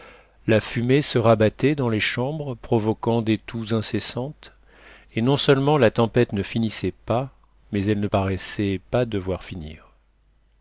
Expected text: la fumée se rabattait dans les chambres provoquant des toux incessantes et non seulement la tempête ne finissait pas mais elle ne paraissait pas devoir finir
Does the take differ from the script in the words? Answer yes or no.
no